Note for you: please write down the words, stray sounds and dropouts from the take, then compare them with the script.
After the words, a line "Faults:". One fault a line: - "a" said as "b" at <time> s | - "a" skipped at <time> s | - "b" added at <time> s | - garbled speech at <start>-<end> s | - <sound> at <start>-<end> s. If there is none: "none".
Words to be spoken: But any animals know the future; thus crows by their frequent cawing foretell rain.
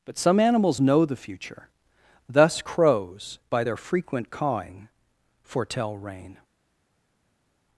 But some animals know the future; thus crows by their frequent cawing foretell rain.
Faults:
- "any" said as "some" at 0.2 s